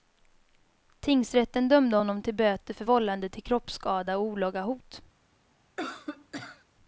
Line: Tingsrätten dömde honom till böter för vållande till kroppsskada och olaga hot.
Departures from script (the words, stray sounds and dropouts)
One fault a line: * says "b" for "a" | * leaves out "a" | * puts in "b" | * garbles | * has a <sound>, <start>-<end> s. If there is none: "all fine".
* has a cough, 5.8-6.7 s